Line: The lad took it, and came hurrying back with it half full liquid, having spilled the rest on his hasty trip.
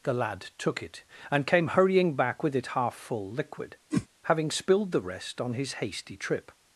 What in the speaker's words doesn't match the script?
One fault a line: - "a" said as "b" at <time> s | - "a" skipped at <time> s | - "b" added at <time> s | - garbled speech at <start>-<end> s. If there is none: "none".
none